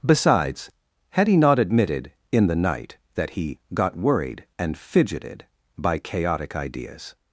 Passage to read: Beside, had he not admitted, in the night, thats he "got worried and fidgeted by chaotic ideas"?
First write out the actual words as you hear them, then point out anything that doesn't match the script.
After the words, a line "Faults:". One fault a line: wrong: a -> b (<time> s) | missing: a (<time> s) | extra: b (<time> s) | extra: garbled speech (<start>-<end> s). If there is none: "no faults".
Besides, had he not admitted, in the night, that he "got worried and fidgeted by chaotic ideas"?
Faults:
wrong: Beside -> Besides (0.0 s)
wrong: thats -> that (3.1 s)